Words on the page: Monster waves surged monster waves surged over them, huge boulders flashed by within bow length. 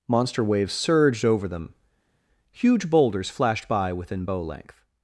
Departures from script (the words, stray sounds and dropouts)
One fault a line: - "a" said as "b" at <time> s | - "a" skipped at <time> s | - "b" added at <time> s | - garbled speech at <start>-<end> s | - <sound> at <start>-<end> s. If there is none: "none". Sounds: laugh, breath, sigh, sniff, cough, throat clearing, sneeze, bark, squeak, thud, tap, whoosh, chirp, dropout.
- "monster waves surged" skipped at 1.2 s